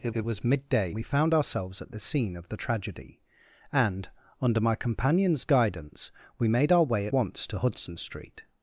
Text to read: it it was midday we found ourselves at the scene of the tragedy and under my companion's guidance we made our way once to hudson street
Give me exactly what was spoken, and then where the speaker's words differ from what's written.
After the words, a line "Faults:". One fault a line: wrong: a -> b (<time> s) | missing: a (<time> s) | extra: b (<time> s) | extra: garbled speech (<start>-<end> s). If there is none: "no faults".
it it was midday we found ourselves at the scene of the tragedy and under my companion's guidance we made our way once to hudson street
Faults:
no faults